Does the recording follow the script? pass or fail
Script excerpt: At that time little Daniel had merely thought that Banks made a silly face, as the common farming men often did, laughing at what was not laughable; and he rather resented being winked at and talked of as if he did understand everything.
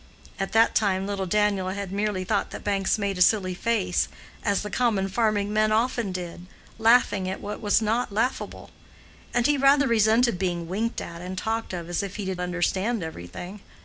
pass